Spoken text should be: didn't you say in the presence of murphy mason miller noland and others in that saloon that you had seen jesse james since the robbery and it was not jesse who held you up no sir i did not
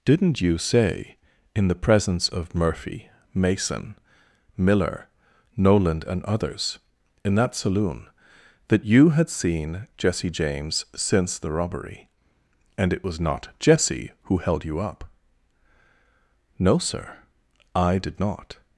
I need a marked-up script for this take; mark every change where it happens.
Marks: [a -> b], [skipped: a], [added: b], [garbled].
didn't you say in the presence of murphy mason miller noland and others in that saloon that you had seen jesse james since the robbery and it was not jesse who held you up no sir i did not